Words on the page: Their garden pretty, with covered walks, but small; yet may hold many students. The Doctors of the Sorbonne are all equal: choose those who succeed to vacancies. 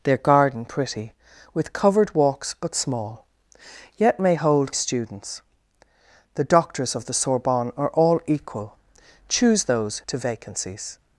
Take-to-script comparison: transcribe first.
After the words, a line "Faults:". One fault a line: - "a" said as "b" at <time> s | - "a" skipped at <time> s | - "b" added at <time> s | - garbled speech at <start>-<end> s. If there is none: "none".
Their garden pretty, with covered walks, but small; yet may hold students. The Doctors of the Sorbonne are all equal: choose those to vacancies.
Faults:
- "many" skipped at 4.7 s
- "who succeed" skipped at 10.0 s